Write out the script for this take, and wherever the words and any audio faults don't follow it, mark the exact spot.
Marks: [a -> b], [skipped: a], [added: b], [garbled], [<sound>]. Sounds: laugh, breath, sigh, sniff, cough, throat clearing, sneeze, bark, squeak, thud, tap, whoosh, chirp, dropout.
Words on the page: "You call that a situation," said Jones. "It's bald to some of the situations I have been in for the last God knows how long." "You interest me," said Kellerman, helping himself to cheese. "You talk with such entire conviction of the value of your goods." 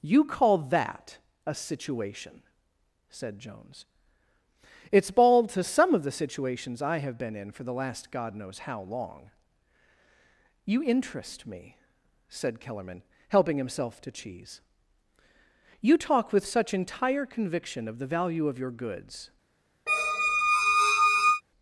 "You call that a situation," said Jones. "It's bald to some of the situations I have been in for the last God knows how long." "You interest me," said Kellerman, helping himself to cheese. "You talk with such entire conviction of the value of your goods." [squeak]